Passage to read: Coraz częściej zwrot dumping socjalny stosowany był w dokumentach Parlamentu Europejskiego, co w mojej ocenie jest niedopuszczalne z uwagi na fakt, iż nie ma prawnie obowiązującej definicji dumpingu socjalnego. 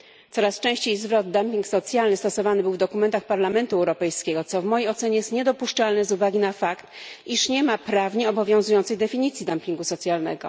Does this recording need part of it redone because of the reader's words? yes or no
no